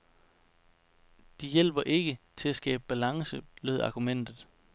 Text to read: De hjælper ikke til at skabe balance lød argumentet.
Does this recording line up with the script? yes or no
yes